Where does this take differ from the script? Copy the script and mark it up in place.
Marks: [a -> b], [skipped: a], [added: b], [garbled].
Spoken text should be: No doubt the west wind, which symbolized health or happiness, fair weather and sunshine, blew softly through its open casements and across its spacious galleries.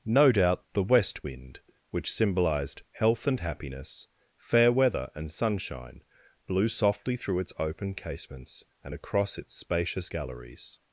No doubt the west wind, which symbolized health [or -> and] happiness, fair weather and sunshine, blew softly through its open casements and across its spacious galleries.